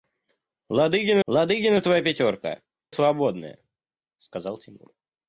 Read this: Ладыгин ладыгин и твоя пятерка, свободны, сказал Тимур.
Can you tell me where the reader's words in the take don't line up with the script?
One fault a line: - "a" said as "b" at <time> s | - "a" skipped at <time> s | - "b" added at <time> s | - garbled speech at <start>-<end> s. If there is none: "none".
none